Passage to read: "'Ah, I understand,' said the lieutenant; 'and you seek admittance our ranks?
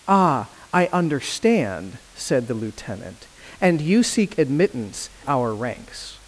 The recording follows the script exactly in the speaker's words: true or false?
true